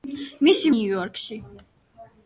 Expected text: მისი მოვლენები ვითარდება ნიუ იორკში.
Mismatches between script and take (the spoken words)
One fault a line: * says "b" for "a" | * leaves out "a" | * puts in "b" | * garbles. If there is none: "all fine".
* leaves out "მოვლენები ვითარდება"